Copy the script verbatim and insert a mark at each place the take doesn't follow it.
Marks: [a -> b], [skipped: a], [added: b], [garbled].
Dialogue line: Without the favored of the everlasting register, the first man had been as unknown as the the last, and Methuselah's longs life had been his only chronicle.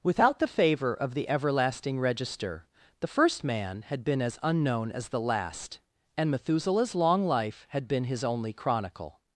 Without the [favored -> favor] of the everlasting register, the first man had been as unknown as the [skipped: the] last, and Methuselah's [longs -> long] life had been his only chronicle.